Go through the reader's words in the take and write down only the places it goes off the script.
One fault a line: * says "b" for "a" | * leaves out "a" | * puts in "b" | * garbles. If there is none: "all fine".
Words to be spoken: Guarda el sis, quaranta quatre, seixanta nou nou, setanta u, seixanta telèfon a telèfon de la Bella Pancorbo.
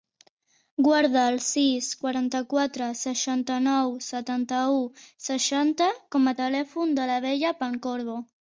* leaves out "nou"
* says "com" for "telèfon"